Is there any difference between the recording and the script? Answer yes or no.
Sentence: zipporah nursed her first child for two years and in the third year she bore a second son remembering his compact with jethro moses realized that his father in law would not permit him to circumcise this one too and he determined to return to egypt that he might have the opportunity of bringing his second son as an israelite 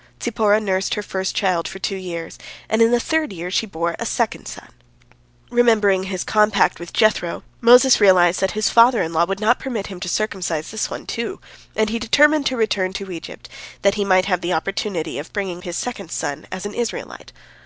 no